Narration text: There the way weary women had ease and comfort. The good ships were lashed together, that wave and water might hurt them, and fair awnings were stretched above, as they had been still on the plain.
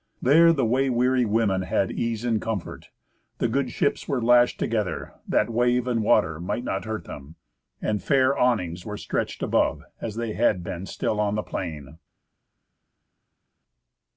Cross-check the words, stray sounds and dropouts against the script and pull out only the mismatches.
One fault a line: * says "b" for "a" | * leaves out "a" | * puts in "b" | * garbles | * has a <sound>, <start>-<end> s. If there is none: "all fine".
* puts in "not"